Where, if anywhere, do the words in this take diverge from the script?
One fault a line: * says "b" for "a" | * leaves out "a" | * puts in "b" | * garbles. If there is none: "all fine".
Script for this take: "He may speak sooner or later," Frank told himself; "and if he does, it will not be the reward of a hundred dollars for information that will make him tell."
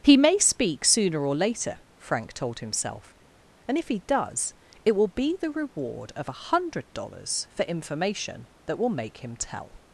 * leaves out "not"